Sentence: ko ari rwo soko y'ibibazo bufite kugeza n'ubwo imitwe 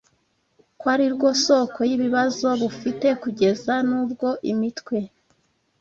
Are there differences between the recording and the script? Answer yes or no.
no